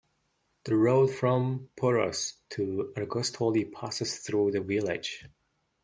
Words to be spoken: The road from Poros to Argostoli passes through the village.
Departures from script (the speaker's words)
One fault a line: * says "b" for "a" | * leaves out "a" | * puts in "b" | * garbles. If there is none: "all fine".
all fine